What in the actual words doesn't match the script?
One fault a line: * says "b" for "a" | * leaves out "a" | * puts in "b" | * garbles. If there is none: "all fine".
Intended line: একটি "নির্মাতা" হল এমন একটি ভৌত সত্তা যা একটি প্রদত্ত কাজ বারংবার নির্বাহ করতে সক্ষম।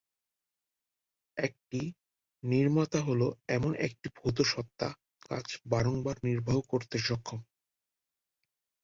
* leaves out "যা একটি প্রদত্ত"